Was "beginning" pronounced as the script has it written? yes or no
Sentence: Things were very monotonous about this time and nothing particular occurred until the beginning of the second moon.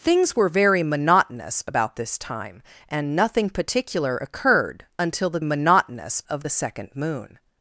no